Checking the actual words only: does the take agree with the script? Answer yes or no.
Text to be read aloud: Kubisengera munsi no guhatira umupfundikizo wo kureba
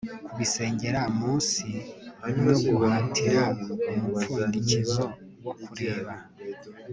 yes